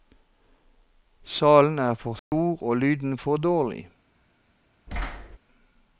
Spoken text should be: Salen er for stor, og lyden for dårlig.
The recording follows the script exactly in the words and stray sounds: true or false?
false